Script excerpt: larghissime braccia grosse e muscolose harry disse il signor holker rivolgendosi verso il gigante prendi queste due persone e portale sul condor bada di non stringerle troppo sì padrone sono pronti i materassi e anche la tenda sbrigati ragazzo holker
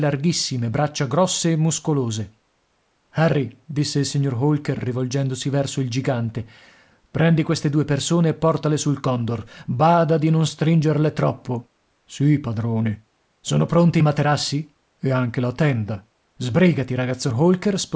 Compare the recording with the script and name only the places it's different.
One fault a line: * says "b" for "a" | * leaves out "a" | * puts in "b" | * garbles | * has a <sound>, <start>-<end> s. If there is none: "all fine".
all fine